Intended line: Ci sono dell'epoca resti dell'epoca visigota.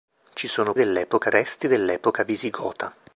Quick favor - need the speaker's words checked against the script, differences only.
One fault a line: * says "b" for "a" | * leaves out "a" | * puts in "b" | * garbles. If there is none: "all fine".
all fine